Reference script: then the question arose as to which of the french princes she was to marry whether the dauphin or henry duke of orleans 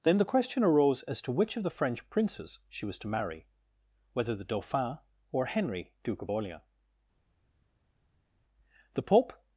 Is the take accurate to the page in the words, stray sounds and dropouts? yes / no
no